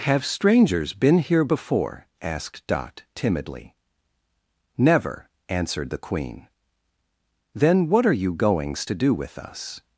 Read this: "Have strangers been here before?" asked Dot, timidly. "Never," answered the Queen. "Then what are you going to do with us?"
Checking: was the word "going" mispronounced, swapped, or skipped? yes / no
yes